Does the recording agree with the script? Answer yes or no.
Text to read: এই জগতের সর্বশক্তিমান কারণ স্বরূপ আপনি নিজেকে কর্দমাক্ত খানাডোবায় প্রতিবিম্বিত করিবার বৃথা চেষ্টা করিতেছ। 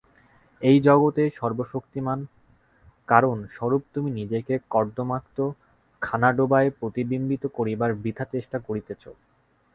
no